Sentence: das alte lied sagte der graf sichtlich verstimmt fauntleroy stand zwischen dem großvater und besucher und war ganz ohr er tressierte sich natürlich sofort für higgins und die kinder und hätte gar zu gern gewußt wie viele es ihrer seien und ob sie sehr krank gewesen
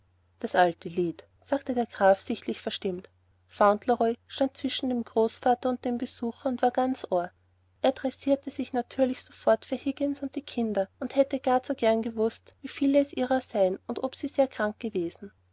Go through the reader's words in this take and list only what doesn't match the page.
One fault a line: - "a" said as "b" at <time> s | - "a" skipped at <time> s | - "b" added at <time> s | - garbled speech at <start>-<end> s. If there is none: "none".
- "dem" added at 5.8 s